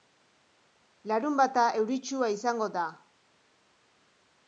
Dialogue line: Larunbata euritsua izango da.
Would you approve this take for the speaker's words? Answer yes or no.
yes